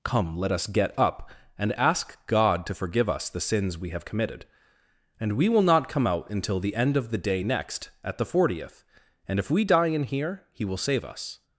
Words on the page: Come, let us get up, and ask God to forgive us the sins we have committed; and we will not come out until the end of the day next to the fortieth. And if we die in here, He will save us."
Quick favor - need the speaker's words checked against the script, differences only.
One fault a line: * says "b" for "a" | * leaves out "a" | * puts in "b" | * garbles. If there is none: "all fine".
* says "at" for "to"